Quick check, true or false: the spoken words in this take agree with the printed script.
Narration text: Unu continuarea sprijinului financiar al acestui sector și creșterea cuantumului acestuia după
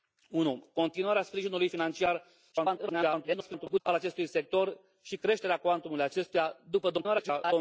false